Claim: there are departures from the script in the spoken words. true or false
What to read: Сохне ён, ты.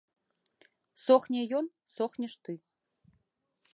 true